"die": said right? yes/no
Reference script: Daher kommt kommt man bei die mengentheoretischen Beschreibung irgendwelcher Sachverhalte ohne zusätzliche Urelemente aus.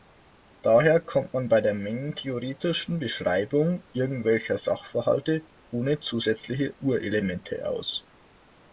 no